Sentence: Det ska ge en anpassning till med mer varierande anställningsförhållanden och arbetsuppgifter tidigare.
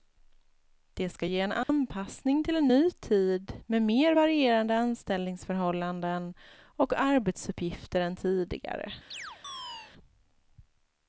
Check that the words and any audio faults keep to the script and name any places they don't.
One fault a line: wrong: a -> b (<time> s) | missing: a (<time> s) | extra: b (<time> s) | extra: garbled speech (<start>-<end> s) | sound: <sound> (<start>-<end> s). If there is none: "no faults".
sound: dropout (1.6-1.7 s)
extra: en ny tid (2.5 s)
extra: än (8.0 s)
sound: chirp (9.1-9.9 s)